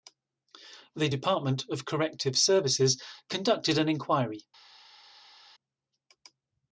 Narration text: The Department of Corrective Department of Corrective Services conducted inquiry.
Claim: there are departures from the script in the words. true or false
true